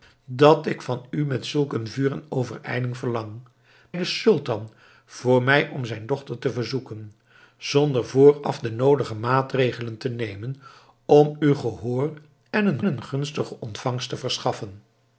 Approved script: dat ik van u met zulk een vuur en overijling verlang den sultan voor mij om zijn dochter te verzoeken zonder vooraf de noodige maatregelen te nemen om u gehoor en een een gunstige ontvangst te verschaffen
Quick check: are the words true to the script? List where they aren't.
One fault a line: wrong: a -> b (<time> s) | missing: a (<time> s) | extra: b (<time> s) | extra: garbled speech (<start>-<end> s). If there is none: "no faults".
no faults